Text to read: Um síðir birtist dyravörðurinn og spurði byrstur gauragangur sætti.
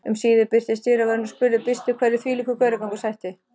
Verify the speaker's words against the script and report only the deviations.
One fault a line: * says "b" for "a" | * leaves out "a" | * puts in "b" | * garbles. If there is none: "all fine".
* puts in "hverju þvílíkur"